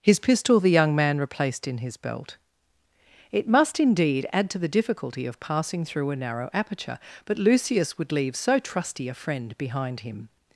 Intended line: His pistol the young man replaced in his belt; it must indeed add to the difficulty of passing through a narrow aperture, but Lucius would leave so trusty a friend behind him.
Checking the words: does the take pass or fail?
pass